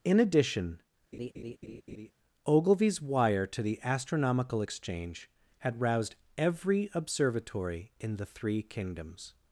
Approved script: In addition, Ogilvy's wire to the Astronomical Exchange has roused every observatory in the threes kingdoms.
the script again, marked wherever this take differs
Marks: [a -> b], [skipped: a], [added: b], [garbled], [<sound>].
In addition, [laugh] Ogilvy's wire to the Astronomical Exchange [has -> had] roused every observatory in the [threes -> three] kingdoms.